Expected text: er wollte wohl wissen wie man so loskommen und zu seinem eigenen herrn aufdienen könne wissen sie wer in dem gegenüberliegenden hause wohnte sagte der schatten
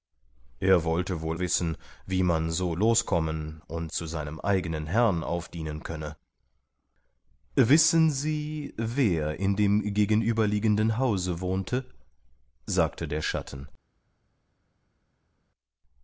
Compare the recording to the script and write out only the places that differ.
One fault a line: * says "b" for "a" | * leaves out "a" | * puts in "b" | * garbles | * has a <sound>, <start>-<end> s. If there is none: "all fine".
all fine